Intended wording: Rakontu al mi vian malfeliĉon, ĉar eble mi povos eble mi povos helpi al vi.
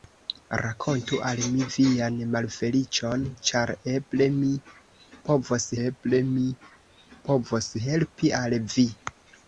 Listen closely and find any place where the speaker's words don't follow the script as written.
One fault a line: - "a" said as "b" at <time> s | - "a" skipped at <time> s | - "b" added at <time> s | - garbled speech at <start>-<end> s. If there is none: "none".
none